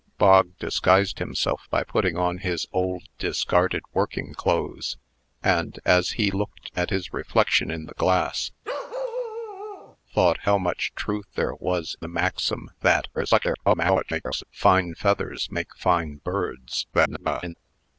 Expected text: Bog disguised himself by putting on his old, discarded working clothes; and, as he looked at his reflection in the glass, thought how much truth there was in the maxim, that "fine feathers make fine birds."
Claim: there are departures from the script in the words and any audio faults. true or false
true